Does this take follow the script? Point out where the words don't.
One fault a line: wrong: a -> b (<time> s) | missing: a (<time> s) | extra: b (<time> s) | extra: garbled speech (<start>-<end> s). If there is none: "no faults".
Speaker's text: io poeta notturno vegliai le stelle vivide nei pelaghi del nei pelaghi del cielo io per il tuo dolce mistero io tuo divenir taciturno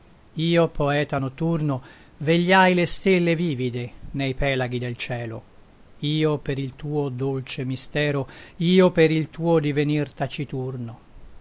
missing: nei pelaghi del (5.0 s)
extra: per il (8.9 s)